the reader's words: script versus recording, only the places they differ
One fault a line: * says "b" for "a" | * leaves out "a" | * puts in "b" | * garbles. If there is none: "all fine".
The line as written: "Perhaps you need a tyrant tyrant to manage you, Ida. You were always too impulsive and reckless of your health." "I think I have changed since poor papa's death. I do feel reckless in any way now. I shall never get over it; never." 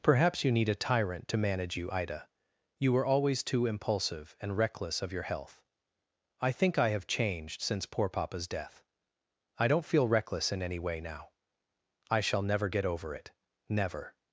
* leaves out "tyrant"
* says "don't" for "do"